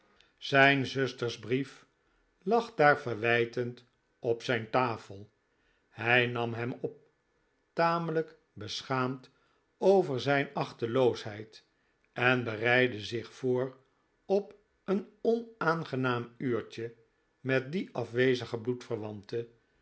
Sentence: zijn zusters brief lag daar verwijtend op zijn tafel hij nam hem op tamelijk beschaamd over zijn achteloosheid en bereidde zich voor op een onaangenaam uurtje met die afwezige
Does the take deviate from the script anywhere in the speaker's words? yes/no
no